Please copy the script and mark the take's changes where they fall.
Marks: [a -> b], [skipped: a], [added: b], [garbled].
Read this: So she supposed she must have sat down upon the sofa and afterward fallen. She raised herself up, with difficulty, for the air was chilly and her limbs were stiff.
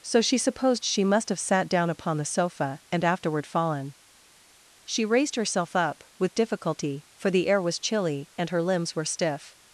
So she supposed she must have sat down upon the sofa and afterward fallen. She raised herself up, with difficulty, for the air was chilly and her limbs were stiff.